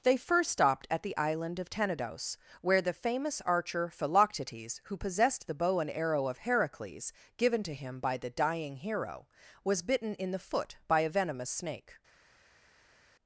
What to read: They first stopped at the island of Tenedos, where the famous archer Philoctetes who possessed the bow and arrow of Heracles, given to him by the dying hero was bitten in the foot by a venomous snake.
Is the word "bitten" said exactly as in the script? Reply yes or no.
yes